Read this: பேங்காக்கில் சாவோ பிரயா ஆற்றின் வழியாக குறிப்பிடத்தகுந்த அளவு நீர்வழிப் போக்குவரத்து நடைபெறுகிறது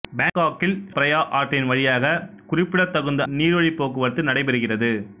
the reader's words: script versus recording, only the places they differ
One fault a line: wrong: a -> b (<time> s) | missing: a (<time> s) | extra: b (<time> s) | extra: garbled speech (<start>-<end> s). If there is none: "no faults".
missing: சாவோ (0.7 s)
missing: அளவு (3.2 s)